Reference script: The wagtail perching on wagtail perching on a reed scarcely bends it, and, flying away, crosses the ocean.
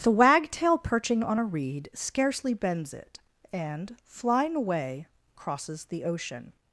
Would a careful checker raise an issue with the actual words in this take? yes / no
yes